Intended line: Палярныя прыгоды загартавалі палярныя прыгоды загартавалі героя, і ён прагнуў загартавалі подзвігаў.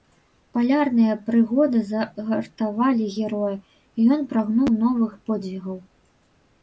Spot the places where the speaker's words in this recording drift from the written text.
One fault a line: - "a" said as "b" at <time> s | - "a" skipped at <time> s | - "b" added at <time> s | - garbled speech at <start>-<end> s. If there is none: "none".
- "палярныя прыгоды загартавалі" skipped at 3.0 s
- "загартавалі" said as "новых" at 4.8 s